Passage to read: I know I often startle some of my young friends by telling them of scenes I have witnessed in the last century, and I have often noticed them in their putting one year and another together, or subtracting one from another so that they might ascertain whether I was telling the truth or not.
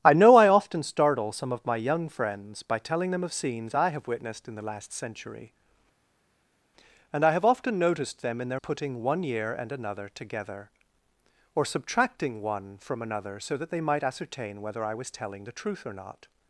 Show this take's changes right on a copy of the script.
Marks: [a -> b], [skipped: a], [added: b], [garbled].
I know I often startle some of my young friends by telling them of scenes I have witnessed in the last century, and I have often noticed them in their putting one year and another together, or subtracting one from another so that they might ascertain whether I was telling the truth or not.